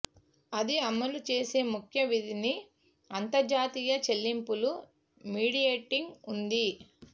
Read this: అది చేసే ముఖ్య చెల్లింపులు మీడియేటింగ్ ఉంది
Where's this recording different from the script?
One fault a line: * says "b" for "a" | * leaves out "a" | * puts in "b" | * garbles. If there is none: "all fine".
* puts in "అమలు"
* puts in "విధిని అంతర్జాతీయ"